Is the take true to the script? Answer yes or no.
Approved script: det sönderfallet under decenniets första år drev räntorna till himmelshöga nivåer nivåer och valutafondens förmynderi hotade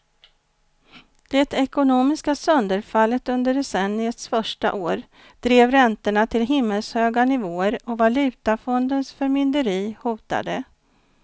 no